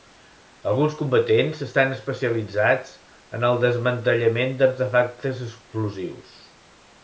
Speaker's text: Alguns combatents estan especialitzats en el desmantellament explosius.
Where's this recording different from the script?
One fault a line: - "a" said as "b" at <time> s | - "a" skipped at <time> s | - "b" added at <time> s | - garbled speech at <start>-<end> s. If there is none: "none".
- "d'artefactes" added at 4.7 s